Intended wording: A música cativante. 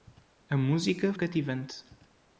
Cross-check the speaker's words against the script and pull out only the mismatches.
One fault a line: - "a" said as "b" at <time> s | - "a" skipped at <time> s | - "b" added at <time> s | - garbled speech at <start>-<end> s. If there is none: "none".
none